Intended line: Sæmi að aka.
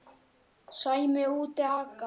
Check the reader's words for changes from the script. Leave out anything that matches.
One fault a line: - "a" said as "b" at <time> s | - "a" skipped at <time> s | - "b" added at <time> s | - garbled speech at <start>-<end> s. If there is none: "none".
- "úti" added at 1.4 s